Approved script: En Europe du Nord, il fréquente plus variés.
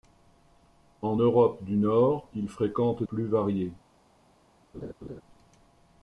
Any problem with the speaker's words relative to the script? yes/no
no